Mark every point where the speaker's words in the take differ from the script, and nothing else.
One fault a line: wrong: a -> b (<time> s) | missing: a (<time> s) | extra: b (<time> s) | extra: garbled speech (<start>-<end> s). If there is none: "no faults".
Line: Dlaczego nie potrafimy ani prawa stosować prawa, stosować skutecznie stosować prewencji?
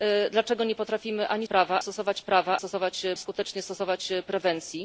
no faults